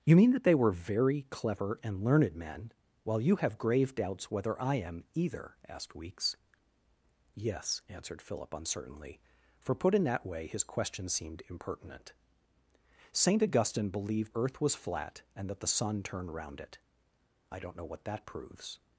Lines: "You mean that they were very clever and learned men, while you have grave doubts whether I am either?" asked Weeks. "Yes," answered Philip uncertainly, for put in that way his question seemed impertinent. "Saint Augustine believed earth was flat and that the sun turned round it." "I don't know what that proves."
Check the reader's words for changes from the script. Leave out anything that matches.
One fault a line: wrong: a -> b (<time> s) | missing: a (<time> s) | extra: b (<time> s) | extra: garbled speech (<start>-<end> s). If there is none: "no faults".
no faults